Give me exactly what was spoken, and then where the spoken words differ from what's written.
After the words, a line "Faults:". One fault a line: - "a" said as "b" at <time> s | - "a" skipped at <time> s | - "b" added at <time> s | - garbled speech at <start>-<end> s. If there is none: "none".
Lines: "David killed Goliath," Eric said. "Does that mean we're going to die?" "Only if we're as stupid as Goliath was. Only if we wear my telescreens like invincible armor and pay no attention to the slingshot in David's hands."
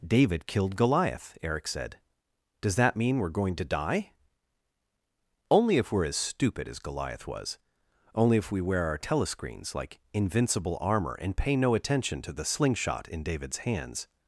"David killed Goliath," Eric said. "Does that mean we're going to die?" "Only if we're as stupid as Goliath was. Only if we wear our telescreens like invincible armor and pay no attention to the slingshot in David's hands."
Faults:
- "my" said as "our" at 8.8 s